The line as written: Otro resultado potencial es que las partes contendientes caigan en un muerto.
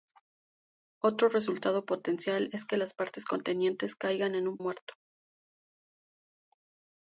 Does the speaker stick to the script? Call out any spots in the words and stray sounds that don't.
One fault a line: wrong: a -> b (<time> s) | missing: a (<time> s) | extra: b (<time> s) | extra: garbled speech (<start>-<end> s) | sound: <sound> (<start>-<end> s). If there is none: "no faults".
no faults